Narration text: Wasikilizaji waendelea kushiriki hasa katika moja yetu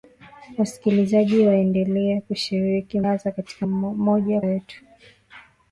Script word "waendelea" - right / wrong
right